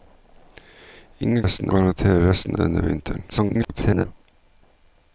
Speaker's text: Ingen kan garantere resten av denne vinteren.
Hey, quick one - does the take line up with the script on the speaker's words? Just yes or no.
no